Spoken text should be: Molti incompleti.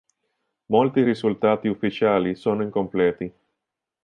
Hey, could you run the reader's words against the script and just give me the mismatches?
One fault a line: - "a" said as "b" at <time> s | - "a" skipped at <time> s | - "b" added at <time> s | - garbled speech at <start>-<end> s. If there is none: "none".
- "risultati ufficiali sono" added at 1.0 s